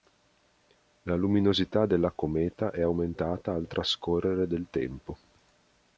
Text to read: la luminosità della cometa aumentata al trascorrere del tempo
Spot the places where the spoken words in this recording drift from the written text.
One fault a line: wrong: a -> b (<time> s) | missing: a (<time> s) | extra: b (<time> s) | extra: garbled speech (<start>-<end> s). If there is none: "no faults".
extra: è (2.7 s)